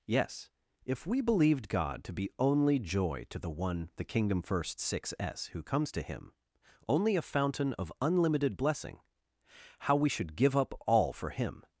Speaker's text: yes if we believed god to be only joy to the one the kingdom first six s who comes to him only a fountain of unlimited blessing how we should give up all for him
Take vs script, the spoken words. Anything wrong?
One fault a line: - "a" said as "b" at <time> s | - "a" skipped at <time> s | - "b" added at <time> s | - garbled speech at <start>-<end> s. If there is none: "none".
none